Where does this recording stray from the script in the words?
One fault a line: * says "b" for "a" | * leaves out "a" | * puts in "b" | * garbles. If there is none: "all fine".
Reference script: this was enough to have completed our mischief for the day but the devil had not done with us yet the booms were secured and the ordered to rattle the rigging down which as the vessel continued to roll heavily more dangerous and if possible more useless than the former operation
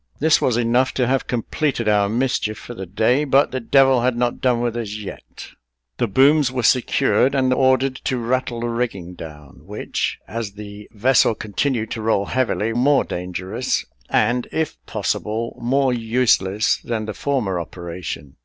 all fine